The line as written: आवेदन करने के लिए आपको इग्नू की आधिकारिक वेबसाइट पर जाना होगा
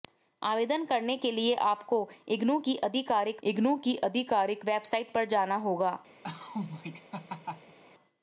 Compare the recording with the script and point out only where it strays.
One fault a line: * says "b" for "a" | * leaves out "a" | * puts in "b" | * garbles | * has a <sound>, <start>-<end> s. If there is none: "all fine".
* puts in "इग्नू की आधिकारिक"
* has a laugh, 6.2-7.8 s